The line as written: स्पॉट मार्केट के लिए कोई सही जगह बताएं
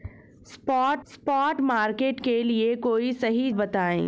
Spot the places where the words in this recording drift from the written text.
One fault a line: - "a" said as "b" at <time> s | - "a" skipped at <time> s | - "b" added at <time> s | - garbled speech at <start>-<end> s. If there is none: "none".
- "स्पॉट" added at 1.1 s
- "जगह" skipped at 3.5 s